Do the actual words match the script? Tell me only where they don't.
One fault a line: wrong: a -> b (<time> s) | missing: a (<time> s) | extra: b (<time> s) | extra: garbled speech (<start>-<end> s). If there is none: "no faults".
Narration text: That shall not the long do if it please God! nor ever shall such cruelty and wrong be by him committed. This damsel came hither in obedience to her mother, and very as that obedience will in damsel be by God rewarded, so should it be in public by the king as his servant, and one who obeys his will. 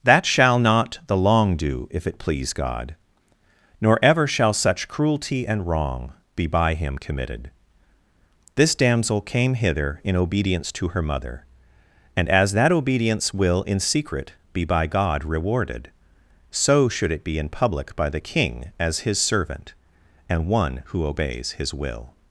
missing: very (12.3 s)
wrong: damsel -> secret (13.8 s)